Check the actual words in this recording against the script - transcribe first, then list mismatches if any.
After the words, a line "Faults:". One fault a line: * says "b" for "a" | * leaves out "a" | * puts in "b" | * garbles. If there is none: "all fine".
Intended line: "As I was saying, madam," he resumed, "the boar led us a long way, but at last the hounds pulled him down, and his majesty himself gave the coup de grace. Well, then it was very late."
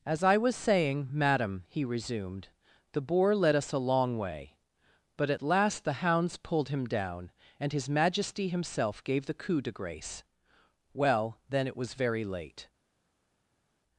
"As I was saying, madam," he resumed, "the boar led us a long way, but at last the hounds pulled him down, and his majesty himself gave the coup de grace. Well, then it was very late."
Faults:
all fine